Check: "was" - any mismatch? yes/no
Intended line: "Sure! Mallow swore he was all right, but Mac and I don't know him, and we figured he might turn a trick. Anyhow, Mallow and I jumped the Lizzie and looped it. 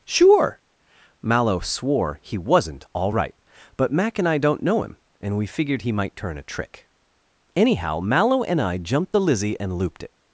yes